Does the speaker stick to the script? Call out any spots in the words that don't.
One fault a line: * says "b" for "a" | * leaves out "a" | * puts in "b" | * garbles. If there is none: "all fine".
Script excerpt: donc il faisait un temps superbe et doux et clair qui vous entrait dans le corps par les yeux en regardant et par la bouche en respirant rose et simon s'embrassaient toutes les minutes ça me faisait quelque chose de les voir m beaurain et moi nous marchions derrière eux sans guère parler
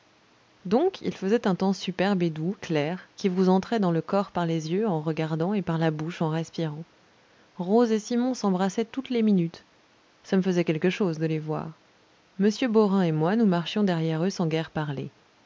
* leaves out "et"